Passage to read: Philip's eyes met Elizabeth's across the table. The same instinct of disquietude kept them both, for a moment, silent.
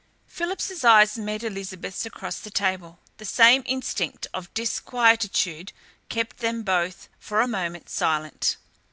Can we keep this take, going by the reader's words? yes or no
yes